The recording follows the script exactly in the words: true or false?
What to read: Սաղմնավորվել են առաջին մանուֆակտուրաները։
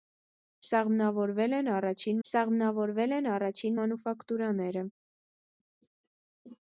false